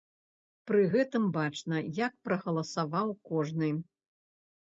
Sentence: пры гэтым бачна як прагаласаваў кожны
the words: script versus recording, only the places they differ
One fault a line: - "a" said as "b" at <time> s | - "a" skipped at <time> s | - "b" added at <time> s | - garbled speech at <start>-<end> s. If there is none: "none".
none